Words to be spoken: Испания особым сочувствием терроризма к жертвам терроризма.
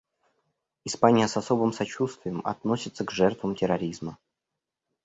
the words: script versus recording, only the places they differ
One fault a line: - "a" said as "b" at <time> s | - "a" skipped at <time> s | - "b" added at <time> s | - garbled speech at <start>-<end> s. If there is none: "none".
- "с" added at 1.3 s
- "терроризма" said as "относится" at 2.4 s